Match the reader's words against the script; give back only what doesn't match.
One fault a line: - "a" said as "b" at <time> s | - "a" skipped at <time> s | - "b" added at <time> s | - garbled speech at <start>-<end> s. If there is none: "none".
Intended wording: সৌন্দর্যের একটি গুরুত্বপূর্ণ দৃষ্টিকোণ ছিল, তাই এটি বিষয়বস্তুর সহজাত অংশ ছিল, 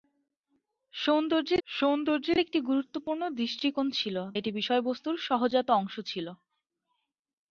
- "সৌন্দর্যের" added at 1.7 s
- "তাই" skipped at 4.2 s